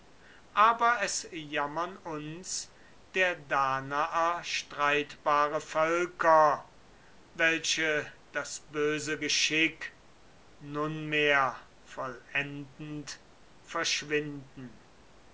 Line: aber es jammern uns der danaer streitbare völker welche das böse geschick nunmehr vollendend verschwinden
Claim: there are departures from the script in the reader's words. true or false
false